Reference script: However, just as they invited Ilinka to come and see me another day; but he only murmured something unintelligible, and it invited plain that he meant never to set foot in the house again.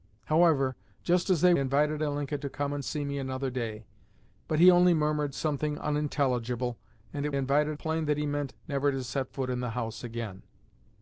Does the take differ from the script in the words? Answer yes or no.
no